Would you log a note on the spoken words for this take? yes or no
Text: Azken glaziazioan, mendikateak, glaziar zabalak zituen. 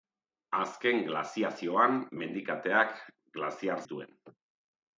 yes